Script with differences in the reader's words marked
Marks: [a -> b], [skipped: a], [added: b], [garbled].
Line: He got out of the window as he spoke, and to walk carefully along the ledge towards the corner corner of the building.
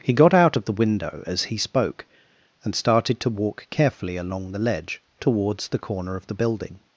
He got out of the window as he spoke, and [added: started] to walk carefully along the ledge towards the corner [skipped: corner] of the building.